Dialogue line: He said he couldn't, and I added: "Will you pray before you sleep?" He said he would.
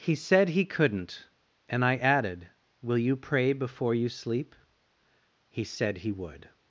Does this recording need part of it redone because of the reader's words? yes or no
no